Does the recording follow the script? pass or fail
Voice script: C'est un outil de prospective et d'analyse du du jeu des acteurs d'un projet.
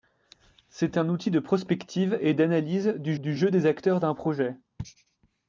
pass